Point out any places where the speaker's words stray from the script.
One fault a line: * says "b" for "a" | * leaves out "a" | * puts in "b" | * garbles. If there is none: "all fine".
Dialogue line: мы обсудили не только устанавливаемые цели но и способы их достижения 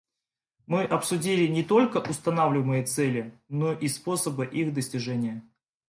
all fine